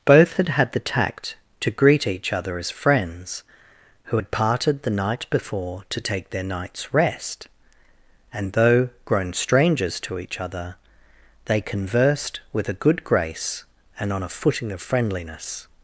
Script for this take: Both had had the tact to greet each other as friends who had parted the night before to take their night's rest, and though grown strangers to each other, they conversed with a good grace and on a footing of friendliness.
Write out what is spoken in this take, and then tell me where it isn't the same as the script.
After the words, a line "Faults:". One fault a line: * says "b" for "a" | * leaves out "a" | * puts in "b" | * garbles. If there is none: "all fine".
Both had had the tact to greet each other as friends who had parted the night before to take their night's rest, and though grown strangers to each other, they conversed with a good grace and on a footing of friendliness.
Faults:
all fine